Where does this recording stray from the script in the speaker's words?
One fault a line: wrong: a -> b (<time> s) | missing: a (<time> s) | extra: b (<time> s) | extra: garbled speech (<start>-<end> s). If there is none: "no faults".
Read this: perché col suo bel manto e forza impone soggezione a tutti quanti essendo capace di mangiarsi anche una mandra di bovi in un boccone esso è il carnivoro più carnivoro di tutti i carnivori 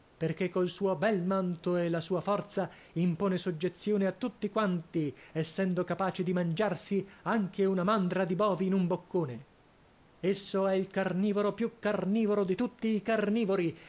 extra: la sua (1.9 s)